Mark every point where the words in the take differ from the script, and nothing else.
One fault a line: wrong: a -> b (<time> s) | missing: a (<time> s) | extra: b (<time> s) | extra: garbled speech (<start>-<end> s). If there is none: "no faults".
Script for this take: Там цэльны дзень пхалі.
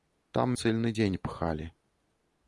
no faults